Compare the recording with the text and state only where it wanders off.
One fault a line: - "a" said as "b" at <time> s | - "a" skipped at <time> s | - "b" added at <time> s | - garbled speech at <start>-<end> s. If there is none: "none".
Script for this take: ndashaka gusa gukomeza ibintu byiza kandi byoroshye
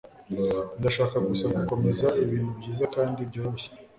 none